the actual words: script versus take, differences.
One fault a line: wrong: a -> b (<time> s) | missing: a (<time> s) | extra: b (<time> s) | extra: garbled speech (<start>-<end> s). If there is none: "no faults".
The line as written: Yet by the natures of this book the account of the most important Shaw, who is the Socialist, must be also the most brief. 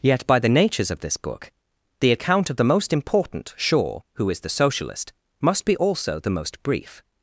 no faults